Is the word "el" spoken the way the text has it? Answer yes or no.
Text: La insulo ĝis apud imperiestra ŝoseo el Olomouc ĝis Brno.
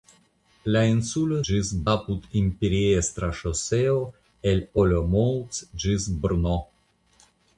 yes